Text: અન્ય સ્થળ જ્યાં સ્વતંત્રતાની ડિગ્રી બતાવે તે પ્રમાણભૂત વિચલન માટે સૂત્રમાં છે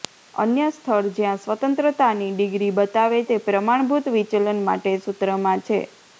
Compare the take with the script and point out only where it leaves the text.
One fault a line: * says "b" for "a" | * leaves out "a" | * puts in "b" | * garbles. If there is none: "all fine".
all fine